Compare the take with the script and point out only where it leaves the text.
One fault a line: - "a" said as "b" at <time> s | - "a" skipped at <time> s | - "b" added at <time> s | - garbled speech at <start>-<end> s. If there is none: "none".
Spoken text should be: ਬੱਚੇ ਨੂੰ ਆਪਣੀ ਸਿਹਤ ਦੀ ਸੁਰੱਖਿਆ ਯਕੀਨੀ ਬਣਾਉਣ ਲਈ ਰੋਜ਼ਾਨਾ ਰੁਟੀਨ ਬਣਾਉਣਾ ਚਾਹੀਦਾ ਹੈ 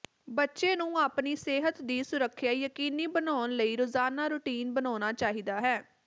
none